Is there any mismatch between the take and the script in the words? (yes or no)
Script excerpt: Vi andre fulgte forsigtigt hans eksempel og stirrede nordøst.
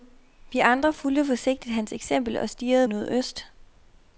no